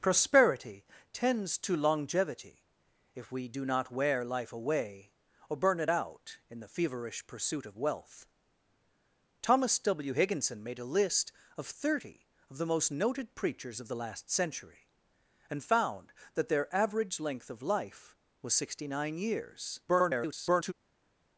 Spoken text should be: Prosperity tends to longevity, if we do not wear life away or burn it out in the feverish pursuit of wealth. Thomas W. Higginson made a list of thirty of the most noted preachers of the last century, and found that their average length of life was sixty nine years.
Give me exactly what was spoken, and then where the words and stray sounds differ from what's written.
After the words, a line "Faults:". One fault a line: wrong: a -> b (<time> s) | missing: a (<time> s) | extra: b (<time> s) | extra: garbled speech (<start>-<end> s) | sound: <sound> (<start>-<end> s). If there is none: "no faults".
Prosperity tends to longevity, if we do not wear life away or burn it out in the feverish pursuit of wealth. Thomas W. Higginson made a list of thirty of the most noted preachers of the last century, and found that their average length of life was sixty nine years. [garbled]
Faults:
extra: garbled speech (19.9-20.7 s)